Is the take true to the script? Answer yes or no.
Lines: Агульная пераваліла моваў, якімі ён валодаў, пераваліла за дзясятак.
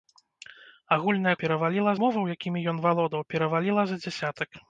yes